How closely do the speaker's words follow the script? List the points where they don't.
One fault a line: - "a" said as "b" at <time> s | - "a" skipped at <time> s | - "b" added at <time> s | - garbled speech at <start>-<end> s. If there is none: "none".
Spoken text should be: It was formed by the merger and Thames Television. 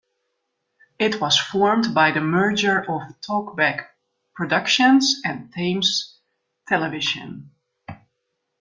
- "of Talkback Productions" added at 2.8 s